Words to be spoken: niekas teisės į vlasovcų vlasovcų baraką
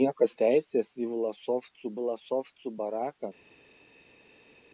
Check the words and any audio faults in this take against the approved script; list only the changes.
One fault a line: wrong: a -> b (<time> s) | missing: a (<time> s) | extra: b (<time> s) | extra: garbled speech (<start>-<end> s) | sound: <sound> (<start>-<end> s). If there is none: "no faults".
no faults